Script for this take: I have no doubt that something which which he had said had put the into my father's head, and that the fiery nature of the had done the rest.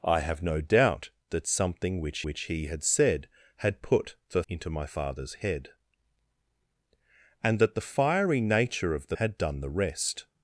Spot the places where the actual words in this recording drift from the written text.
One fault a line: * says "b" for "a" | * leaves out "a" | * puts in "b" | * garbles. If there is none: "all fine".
all fine